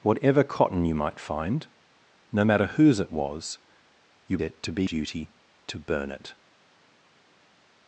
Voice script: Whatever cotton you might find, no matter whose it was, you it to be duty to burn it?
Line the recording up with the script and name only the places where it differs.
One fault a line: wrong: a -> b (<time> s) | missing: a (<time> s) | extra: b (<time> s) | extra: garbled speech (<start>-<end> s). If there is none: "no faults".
no faults